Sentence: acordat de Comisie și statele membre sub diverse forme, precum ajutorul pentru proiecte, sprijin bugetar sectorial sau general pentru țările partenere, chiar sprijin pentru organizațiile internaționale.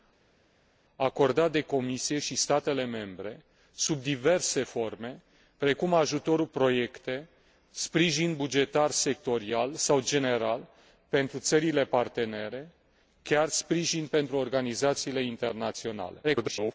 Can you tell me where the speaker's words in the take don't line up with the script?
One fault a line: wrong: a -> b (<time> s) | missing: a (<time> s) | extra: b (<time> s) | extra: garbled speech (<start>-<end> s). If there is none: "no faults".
missing: pentru (6.5 s)
extra: garbled speech (16.2-16.7 s)